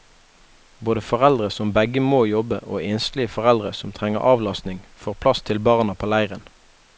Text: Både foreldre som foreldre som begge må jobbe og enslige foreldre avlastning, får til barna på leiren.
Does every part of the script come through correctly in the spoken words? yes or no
no